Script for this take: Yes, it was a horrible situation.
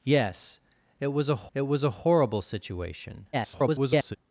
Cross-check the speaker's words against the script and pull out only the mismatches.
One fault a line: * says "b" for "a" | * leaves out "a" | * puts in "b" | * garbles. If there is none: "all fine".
* puts in "it was a"
* garbles